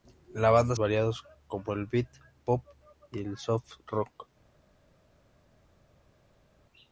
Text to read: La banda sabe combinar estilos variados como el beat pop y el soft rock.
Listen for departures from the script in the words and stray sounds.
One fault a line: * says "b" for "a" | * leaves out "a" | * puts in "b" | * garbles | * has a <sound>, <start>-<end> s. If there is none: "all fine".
* leaves out "sabe combinar estilos"